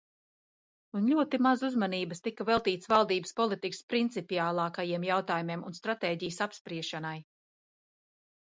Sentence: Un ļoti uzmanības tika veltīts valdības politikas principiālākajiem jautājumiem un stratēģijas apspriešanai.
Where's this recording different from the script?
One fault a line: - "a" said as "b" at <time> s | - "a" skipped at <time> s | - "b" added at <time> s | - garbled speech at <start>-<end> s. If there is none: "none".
- "maz" added at 1.5 s